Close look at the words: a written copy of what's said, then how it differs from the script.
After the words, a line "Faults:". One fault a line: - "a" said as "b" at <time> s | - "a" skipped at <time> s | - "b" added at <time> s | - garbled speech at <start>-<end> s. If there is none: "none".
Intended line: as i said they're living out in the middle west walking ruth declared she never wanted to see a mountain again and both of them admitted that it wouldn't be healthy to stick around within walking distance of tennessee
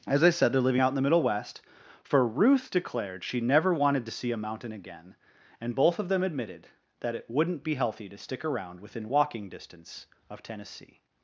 as i said they're living out in the middle west for ruth declared she never wanted to see a mountain again and both of them admitted that it wouldn't be healthy to stick around within walking distance of tennessee
Faults:
- "walking" said as "for" at 2.0 s